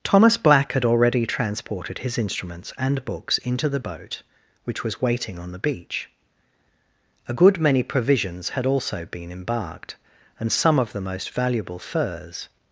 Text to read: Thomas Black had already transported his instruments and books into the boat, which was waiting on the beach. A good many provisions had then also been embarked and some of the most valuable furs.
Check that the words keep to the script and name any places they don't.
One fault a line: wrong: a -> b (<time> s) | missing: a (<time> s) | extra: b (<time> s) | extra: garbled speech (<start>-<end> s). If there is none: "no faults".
missing: then (8.7 s)